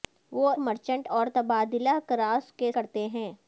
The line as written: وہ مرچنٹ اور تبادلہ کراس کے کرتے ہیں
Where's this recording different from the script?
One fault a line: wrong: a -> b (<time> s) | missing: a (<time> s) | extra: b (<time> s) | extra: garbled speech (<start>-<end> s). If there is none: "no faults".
no faults